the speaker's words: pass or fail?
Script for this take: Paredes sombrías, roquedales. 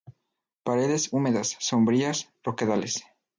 fail